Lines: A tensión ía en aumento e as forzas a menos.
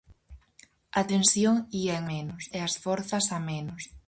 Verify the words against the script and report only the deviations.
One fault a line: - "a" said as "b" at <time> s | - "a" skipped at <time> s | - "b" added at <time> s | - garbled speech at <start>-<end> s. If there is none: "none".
- "aumento" said as "menos" at 2.1 s